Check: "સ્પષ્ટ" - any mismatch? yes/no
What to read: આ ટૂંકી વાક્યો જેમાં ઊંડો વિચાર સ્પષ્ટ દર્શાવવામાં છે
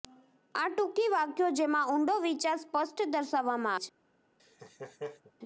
no